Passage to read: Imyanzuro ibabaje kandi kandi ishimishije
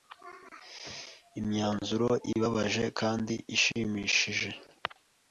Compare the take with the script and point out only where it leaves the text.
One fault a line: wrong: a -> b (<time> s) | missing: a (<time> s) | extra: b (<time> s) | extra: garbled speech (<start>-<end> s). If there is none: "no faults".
missing: kandi (3.3 s)